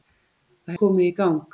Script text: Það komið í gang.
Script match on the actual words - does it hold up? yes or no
yes